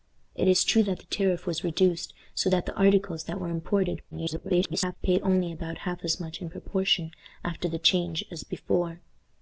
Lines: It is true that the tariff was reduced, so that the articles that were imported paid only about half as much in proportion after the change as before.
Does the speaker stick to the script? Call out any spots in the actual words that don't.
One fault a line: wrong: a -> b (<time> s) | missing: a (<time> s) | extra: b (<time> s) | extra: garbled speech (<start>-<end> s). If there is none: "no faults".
extra: garbled speech (4.1-5.0 s)